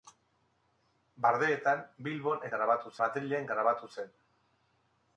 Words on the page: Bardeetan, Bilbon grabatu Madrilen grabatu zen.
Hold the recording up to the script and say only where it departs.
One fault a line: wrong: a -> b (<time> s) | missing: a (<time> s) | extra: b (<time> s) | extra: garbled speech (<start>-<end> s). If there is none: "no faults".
no faults